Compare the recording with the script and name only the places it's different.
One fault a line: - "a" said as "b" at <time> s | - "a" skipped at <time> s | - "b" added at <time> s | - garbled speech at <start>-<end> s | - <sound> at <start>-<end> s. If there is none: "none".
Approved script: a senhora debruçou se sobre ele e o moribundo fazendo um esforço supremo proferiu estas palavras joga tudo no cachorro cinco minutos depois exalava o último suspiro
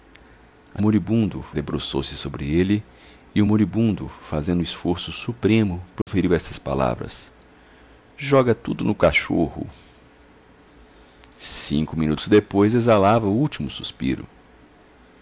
- "senhora" said as "moribundo" at 0.8 s
- dropout at 6.0-6.1 s